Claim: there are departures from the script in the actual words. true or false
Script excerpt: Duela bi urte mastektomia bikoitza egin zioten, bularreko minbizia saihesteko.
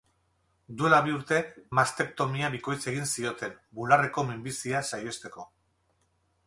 false